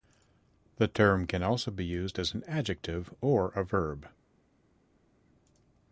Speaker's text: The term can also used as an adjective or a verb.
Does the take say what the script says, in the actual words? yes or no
no